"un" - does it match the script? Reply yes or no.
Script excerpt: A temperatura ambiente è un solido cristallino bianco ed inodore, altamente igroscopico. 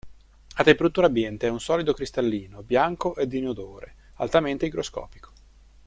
yes